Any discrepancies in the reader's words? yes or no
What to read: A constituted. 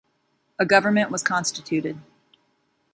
yes